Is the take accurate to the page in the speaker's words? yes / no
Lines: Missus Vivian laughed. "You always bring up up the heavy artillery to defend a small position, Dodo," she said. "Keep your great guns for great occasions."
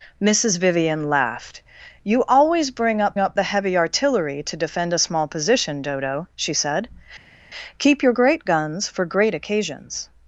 yes